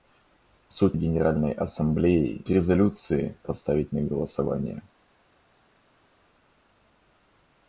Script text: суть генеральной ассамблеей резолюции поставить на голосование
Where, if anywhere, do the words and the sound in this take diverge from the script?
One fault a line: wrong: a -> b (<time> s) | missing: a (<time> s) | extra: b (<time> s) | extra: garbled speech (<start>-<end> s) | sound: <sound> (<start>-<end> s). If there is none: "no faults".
no faults